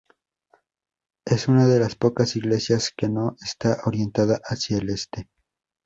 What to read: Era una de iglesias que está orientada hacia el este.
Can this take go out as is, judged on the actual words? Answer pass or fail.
fail